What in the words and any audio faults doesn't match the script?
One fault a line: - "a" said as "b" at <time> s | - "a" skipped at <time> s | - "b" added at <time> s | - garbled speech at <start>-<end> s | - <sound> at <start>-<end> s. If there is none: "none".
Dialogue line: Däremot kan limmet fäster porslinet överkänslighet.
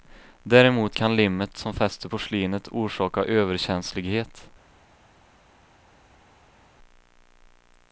- "som" added at 1.6 s
- "orsaka" added at 2.7 s